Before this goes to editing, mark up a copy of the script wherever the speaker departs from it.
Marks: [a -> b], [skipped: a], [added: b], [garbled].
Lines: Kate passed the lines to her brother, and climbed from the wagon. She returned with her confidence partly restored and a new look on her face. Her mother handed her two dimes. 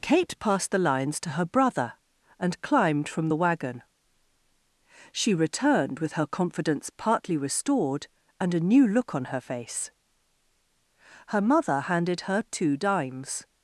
Kate passed the lines to her brother, and climbed from the wagon. She returned with her confidence partly restored and a new look on her face. Her mother handed her two dimes.